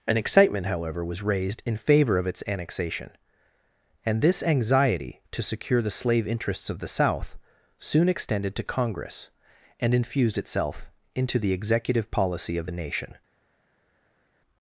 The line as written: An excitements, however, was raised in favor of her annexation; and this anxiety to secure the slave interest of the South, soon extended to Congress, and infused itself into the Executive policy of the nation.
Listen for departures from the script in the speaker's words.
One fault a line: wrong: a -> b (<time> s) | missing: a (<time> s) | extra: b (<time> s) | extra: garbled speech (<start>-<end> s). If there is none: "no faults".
wrong: excitements -> excitement (0.2 s)
wrong: her -> its (2.3 s)
wrong: interest -> interests (6.3 s)